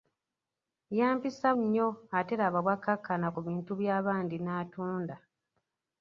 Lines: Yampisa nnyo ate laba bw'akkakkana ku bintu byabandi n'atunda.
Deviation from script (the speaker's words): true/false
false